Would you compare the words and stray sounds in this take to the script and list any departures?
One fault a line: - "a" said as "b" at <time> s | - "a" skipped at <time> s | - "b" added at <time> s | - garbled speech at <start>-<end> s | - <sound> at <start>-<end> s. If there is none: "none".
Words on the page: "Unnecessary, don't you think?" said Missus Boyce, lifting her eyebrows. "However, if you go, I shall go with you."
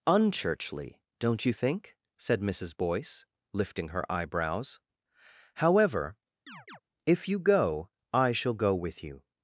- "Unnecessary" said as "Unchurchly" at 0.1 s
- chirp at 6.5-6.8 s